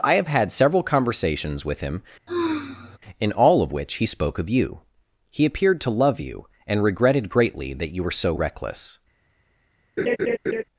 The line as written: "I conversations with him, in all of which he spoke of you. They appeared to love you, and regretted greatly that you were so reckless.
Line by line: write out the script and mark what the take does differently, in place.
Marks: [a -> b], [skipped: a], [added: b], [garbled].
"I [added: have had several] conversations with him, in all of which he spoke of you. [They -> He] appeared to love you, and regretted greatly that you were so reckless.